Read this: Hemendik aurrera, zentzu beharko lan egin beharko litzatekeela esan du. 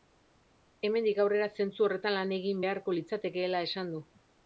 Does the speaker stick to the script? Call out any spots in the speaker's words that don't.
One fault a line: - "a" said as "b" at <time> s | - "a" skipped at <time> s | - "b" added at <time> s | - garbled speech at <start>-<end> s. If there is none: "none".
- "beharko" said as "horretan" at 1.9 s